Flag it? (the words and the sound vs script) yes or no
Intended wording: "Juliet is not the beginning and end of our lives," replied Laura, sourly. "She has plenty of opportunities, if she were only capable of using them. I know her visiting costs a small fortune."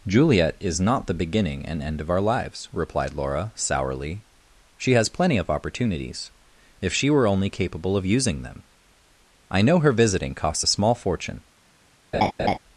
yes